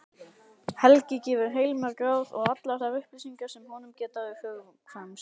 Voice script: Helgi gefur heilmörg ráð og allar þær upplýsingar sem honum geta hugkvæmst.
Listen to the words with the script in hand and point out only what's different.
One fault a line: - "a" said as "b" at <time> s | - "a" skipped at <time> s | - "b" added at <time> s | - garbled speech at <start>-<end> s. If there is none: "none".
none